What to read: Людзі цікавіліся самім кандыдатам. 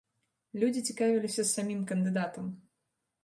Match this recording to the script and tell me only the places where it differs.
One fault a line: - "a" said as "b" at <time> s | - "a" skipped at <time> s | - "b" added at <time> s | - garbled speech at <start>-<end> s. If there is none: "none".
none